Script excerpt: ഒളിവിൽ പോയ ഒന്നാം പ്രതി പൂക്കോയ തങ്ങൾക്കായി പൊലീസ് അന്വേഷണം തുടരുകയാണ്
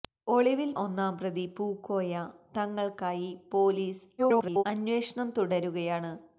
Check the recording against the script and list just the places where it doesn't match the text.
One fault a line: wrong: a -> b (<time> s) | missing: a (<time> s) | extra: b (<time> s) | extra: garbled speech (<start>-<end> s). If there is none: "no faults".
missing: പോയ (0.7 s)
extra: garbled speech (4.2-4.6 s)